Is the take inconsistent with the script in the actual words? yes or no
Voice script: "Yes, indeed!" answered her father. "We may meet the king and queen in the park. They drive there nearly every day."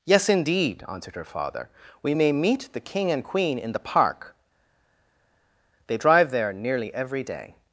no